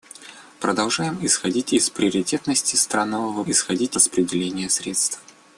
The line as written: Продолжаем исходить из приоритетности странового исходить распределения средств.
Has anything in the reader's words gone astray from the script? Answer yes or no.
no